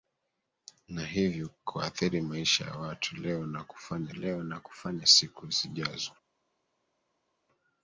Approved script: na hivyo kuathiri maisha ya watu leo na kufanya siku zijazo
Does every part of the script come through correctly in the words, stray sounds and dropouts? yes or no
no